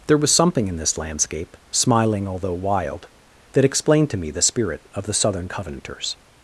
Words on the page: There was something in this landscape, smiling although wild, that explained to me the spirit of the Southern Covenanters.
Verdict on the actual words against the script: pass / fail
pass